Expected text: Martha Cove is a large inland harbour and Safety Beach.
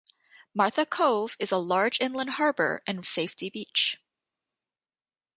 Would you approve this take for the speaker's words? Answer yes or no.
yes